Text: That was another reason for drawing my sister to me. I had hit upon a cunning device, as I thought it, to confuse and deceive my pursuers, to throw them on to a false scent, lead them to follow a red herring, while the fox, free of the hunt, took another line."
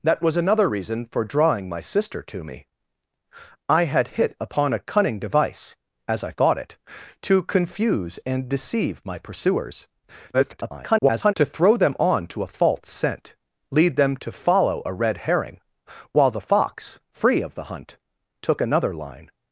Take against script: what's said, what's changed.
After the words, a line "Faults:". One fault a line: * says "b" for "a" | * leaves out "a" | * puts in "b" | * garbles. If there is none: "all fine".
That was another reason for drawing my sister to me. I had hit upon a cunning device, as I thought it, to confuse and deceive my pursuers, [garbled] to throw them on to a false scent, lead them to follow a red herring, while the fox, free of the hunt, took another line."
Faults:
* garbles